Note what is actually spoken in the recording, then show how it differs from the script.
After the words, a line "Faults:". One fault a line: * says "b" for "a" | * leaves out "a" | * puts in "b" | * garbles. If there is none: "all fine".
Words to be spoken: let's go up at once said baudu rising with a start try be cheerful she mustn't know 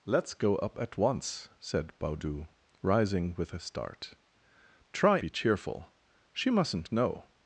let's go up at once said baudu rising with a start try be cheerful she mustn't know
Faults:
all fine